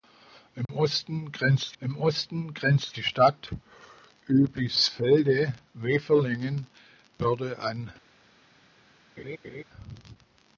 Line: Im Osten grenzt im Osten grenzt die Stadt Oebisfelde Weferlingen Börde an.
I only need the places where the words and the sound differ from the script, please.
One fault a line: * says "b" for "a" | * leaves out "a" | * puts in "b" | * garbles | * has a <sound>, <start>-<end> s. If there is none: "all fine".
* has a dropout, 0.7-0.7 s
* has a laugh, 9.2-9.6 s